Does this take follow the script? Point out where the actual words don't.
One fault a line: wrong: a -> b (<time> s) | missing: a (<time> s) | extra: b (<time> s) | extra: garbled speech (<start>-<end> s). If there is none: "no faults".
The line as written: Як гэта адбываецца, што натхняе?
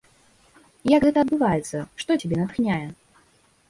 extra: цябе (2.2 s)